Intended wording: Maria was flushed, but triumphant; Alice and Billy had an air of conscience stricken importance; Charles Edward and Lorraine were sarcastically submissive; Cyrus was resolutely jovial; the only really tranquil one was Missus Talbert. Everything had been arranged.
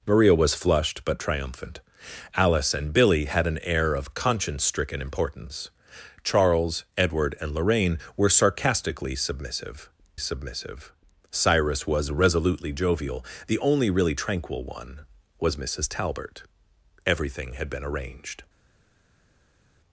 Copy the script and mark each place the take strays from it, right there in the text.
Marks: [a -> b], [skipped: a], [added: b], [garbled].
Maria was flushed, but triumphant; Alice and Billy had an air of conscience stricken importance; Charles Edward and Lorraine were sarcastically submissive; [added: submissive] Cyrus was resolutely jovial; the only really tranquil one was Missus Talbert. Everything had been arranged.